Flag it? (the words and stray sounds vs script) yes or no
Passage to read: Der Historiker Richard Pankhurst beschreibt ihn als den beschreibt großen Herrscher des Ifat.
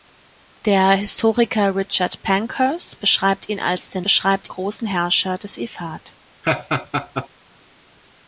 yes